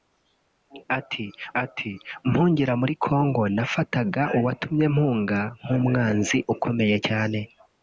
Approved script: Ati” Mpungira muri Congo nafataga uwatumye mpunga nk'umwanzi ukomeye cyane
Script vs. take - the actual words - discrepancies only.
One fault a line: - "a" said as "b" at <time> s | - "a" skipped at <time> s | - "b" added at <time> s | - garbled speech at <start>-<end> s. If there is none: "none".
- "ati" added at 1.6 s